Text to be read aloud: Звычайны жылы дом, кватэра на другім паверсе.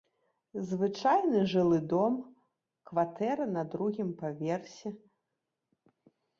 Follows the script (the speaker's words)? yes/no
yes